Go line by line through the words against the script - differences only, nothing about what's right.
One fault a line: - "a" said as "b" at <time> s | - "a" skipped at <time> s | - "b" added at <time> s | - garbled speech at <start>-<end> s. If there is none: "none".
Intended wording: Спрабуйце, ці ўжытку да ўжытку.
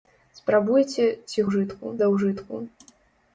none